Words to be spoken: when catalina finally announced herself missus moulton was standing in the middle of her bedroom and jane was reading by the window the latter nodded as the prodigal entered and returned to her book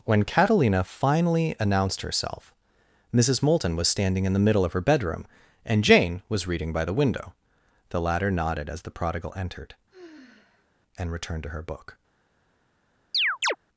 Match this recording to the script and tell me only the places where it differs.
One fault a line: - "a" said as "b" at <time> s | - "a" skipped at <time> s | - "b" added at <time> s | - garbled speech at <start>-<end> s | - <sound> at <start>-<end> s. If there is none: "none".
- sigh at 9.9-10.7 s
- chirp at 13.1-13.6 s